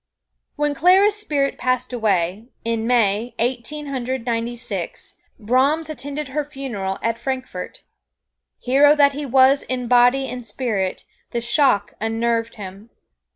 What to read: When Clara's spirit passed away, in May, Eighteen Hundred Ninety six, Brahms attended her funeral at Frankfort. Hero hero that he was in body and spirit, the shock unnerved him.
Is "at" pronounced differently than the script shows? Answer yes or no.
no